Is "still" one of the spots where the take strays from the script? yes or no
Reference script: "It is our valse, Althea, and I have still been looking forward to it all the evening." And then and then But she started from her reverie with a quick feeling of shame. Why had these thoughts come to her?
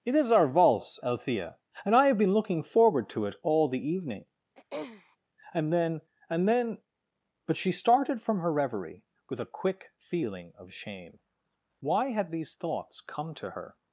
yes